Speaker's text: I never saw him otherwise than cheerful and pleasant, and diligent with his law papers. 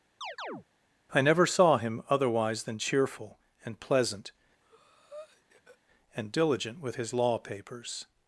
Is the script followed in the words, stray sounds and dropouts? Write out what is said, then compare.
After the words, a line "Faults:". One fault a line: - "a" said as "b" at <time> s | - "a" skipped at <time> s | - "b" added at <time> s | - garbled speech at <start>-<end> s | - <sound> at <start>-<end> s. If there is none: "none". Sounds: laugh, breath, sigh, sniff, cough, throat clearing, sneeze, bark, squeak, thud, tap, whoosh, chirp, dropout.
I never saw him otherwise than cheerful and pleasant, and diligent with his law papers.
Faults:
- chirp at 0.2-0.6 s
- breath at 4.6-5.8 s